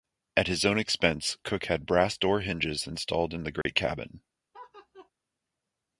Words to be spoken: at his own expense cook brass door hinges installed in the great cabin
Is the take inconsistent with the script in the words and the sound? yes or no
yes